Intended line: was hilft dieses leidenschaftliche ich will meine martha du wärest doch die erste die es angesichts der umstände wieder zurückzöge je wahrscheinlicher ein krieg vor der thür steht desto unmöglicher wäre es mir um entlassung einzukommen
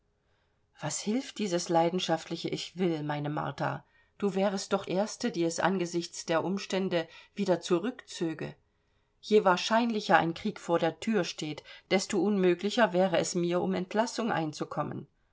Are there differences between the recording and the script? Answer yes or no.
yes